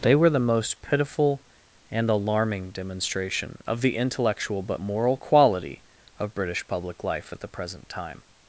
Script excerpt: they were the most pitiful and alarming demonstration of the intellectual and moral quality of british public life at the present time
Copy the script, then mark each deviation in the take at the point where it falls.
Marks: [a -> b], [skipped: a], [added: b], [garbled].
they were the most pitiful and alarming demonstration of the intellectual [and -> but] moral quality of british public life at the present time